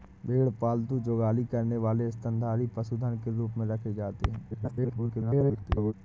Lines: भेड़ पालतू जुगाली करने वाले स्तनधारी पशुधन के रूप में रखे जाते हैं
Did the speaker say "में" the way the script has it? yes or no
yes